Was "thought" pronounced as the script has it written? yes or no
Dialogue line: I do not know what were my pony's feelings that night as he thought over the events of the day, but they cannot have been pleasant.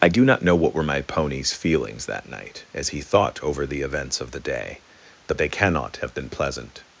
yes